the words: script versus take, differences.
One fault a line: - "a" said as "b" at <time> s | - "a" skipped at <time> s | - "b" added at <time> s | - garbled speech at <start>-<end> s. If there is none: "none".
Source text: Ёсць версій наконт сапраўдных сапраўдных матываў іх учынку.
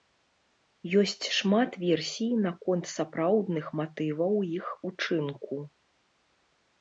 - "шмат" added at 1.4 s
- "сапраўдных" skipped at 3.6 s